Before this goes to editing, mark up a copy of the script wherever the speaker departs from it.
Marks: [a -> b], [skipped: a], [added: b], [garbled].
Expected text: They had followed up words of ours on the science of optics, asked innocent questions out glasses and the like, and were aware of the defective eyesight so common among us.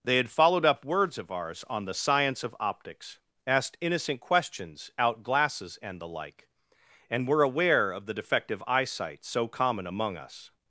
They had followed up words of ours on the science of optics, asked innocent questions out glasses and the like, and were aware of the defective eyesight so common among us.